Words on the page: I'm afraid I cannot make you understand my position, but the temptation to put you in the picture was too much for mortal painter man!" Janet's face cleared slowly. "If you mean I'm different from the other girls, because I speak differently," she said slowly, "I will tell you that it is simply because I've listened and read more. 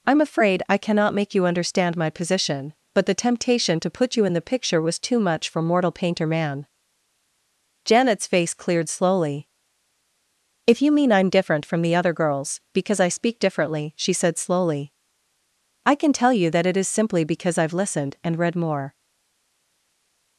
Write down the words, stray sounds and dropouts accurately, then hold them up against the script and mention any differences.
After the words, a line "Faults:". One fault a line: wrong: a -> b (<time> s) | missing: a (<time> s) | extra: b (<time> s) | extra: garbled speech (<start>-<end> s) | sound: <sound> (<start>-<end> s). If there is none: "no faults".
I'm afraid I cannot make you understand my position, but the temptation to put you in the picture was too much for mortal painter man!" Janet's face cleared slowly. "If you mean I'm different from the other girls, because I speak differently," she said slowly, "I can tell you that it is simply because I've listened and read more.
Faults:
wrong: will -> can (15.9 s)